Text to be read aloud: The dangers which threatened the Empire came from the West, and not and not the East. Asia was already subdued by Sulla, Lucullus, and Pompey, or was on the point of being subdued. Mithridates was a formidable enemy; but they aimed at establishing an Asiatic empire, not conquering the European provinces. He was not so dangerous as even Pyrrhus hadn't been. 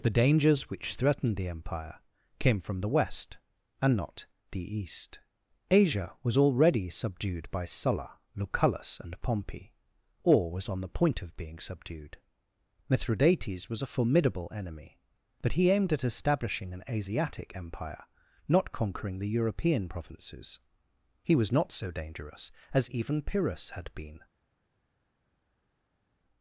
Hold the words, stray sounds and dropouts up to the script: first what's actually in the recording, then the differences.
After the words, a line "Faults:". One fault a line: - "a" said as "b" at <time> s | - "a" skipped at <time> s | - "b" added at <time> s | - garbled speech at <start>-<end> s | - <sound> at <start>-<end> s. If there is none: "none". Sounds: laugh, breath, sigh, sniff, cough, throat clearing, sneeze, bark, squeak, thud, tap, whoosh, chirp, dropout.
The dangers which threatened the Empire came from the West, and not the East. Asia was already subdued by Sulla, Lucullus, and Pompey, or was on the point of being subdued. Mithridates was a formidable enemy; but he aimed at establishing an Asiatic empire, not conquering the European provinces. He was not so dangerous as even Pyrrhus had been.
Faults:
- "and not" skipped at 4.2 s
- "they" said as "he" at 15.6 s
- "hadn't" said as "had" at 23.7 s